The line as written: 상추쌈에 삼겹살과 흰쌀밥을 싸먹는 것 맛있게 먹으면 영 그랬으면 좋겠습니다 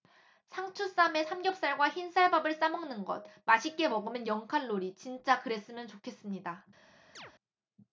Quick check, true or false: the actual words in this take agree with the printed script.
false